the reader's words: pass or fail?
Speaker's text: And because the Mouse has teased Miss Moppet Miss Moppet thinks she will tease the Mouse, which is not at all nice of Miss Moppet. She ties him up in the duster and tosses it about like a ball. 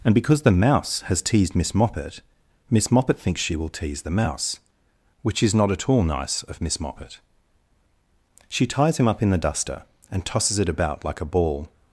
pass